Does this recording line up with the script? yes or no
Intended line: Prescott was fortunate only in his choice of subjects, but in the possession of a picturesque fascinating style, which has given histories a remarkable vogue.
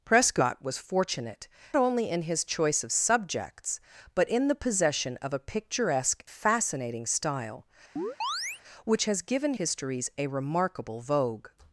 yes